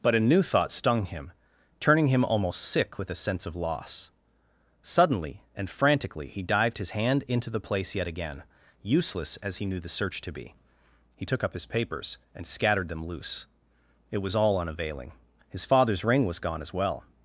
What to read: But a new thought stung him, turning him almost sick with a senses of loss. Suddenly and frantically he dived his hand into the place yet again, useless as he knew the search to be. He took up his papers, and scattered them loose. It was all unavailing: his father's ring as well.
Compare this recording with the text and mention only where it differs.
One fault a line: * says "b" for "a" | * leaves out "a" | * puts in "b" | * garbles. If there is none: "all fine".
* says "sense" for "senses"
* puts in "was gone"